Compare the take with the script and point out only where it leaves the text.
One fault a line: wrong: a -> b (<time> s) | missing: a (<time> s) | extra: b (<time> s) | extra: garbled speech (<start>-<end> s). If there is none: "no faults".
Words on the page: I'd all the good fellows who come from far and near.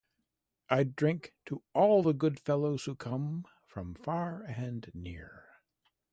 extra: drink to (1.0 s)